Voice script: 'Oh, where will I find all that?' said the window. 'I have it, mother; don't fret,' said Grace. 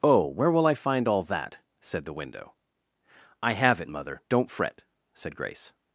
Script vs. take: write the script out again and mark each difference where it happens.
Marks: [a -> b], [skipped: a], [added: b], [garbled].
'Oh, where will I find all that?' said the window. 'I have it, mother; don't fret,' said Grace.